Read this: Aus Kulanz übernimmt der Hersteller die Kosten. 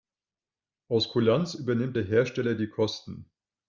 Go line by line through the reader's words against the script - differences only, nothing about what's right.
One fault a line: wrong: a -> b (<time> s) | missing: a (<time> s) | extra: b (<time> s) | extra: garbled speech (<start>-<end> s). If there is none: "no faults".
no faults